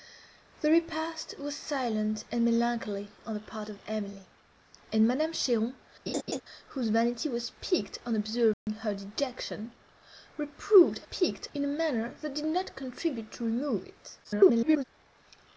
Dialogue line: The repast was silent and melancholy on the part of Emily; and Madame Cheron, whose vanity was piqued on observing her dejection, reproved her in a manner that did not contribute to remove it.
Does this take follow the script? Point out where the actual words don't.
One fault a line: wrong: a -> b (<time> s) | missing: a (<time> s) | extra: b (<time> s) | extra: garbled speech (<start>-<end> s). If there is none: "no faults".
wrong: her -> piqued (11.1 s)
extra: garbled speech (14.2-14.8 s)